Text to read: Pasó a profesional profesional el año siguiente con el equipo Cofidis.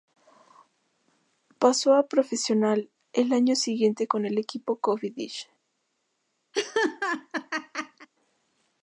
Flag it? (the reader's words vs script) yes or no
yes